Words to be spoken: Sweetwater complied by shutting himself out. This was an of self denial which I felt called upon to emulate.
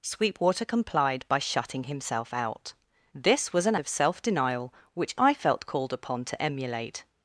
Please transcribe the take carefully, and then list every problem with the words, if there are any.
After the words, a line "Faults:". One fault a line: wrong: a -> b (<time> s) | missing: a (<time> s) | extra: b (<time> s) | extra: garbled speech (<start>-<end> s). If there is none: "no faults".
Sweetwater complied by shutting himself out. This was an of self denial which I felt called upon to emulate.
Faults:
no faults